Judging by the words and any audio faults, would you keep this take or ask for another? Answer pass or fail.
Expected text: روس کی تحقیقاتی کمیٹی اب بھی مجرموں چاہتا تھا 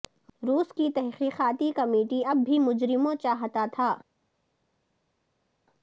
pass